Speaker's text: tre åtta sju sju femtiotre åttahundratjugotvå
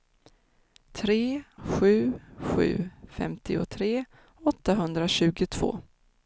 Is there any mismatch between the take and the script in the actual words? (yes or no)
yes